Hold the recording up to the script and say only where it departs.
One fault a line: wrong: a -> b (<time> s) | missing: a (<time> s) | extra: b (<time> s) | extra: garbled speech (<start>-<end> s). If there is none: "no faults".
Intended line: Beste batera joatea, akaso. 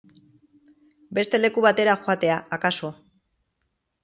extra: leku (1.4 s)